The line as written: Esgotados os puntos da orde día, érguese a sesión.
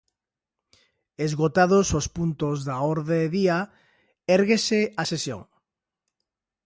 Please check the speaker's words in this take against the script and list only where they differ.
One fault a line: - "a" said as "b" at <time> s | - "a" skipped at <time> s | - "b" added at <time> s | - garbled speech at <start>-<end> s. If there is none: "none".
none